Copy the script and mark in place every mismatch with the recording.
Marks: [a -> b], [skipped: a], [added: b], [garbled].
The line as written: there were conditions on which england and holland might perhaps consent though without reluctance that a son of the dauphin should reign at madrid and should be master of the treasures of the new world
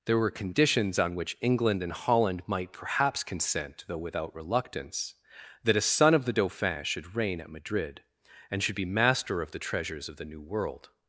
there were conditions on which england and holland might perhaps consent though without reluctance that a son of the dauphin should reign at madrid and should be master of the treasures of the new world